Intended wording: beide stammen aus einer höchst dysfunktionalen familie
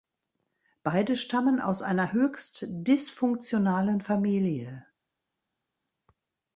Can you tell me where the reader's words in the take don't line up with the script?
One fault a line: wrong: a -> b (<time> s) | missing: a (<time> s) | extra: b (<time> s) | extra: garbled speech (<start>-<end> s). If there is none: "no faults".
no faults